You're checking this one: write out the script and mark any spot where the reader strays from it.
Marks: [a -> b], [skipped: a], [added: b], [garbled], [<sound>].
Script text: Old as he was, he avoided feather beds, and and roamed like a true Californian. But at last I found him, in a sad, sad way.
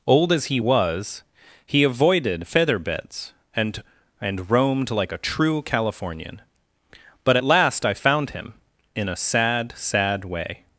Old as he was, he avoided feather beds, and and roamed like a true Californian. But at last I found him, in a sad, sad way.